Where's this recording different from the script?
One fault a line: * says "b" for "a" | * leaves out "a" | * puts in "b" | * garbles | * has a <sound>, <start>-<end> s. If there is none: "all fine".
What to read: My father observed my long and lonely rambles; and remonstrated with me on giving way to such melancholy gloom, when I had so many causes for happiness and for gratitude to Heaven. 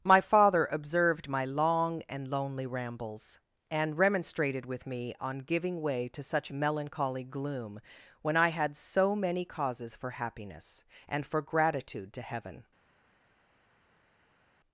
all fine